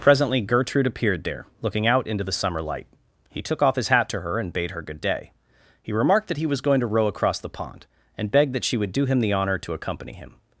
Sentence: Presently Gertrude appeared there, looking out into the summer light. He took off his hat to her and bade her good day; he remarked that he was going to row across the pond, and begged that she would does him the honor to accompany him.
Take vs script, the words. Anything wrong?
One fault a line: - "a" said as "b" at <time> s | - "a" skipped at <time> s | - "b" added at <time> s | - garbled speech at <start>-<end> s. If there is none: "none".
- "does" said as "do" at 8.9 s